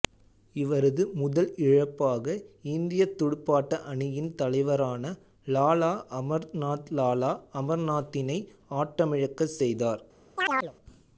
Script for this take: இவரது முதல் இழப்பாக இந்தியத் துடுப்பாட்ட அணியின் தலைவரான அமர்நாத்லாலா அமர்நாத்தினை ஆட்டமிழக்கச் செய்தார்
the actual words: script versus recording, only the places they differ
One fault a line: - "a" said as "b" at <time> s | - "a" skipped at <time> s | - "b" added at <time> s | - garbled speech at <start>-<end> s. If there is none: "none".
- "லாலா" added at 5.5 s